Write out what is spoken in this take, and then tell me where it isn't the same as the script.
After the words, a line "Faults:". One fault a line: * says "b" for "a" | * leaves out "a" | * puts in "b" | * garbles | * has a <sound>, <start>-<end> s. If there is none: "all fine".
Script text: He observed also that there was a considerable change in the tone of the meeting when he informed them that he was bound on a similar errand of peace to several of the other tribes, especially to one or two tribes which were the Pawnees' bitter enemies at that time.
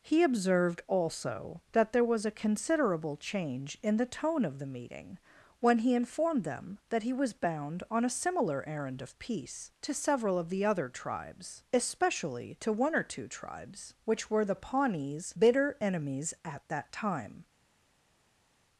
He observed also that there was a considerable change in the tone of the meeting when he informed them that he was bound on a similar errand of peace to several of the other tribes, especially to one or two tribes which were the Pawnees' bitter enemies at that time.
Faults:
all fine